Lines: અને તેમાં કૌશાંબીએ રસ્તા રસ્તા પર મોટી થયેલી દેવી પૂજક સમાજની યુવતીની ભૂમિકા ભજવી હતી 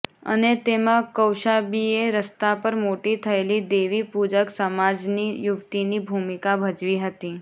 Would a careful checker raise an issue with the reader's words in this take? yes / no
yes